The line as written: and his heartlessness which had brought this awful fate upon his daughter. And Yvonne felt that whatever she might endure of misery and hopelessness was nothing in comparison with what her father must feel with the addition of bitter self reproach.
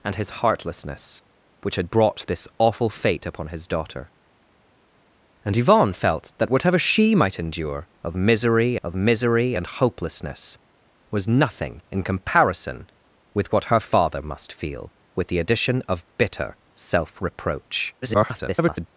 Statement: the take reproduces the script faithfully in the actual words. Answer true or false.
false